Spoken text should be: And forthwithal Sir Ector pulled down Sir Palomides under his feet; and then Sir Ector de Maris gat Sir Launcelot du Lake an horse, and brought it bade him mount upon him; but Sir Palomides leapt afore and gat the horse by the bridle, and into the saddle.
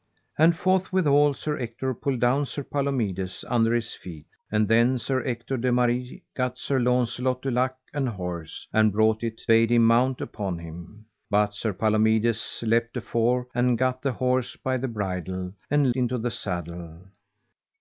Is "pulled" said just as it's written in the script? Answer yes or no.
yes